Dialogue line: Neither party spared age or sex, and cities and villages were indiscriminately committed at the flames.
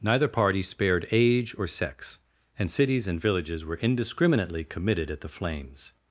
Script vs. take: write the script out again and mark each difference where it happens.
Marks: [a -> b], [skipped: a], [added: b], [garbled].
Neither party spared age or sex, and cities and villages were indiscriminately committed at the flames.